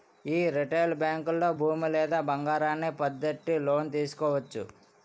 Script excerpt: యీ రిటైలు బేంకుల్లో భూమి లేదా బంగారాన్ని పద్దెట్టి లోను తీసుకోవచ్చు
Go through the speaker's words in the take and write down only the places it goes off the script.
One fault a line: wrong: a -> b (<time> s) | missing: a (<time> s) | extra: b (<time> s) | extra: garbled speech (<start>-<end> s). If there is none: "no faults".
no faults